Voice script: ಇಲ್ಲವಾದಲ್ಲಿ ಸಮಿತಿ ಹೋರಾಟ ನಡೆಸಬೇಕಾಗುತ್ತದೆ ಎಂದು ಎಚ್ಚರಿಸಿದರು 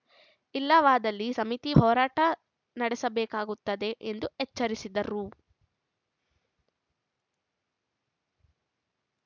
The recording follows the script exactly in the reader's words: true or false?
true